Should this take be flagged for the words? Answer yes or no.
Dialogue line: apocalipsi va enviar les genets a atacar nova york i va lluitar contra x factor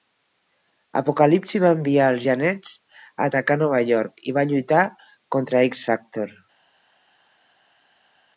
yes